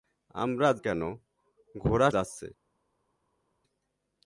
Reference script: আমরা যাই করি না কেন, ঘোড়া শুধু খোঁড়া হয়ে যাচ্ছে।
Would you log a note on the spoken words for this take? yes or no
yes